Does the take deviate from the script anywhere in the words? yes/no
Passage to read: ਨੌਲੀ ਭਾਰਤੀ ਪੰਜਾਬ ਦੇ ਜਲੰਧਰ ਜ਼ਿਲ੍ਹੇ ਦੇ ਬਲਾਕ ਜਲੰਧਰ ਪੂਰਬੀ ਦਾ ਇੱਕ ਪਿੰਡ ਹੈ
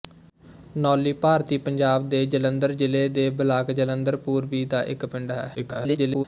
yes